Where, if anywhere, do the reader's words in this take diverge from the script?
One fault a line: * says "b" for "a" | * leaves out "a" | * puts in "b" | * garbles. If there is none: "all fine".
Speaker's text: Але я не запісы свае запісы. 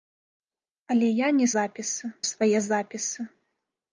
all fine